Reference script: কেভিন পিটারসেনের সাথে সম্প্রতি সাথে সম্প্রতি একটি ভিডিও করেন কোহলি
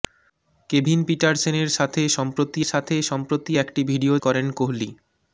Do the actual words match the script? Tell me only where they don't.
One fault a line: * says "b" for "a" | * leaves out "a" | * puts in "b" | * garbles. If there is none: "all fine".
all fine